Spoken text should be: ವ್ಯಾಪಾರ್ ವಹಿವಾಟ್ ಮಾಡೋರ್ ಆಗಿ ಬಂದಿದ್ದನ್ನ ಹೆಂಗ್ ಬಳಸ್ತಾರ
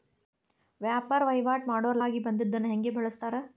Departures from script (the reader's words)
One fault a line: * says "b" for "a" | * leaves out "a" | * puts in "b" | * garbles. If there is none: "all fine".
all fine